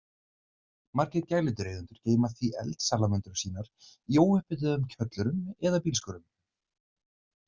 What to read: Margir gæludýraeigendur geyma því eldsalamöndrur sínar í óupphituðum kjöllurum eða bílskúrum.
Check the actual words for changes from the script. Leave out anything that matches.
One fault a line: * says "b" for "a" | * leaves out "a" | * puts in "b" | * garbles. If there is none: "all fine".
all fine